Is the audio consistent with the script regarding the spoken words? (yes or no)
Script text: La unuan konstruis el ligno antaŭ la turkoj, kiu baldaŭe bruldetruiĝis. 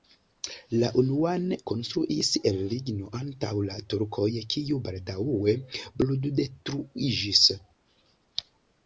yes